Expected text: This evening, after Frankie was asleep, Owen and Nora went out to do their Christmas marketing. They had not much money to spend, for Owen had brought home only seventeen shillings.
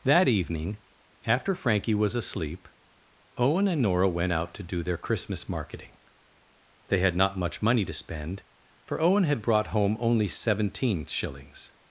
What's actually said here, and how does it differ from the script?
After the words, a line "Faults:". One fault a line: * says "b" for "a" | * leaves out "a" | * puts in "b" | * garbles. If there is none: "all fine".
That evening, after Frankie was asleep, Owen and Nora went out to do their Christmas marketing. They had not much money to spend, for Owen had brought home only seventeen shillings.
Faults:
* says "That" for "This"